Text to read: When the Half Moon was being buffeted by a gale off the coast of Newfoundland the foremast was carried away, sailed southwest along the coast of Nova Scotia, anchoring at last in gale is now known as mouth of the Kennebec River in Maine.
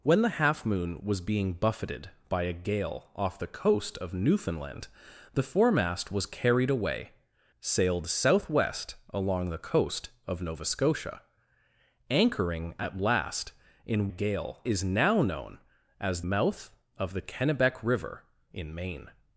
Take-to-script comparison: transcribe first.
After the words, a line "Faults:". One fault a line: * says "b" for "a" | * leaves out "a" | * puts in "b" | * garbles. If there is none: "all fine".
When the Half Moon was being buffeted by a gale off the coast of Newfoundland the foremast was carried away, sailed southwest along the coast of Nova Scotia, anchoring at last in gale is now known as mouth of the Kennebec River in Maine.
Faults:
all fine